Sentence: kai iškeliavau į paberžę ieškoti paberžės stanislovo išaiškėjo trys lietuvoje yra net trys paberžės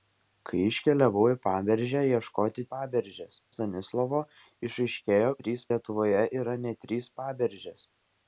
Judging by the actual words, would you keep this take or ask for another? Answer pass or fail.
pass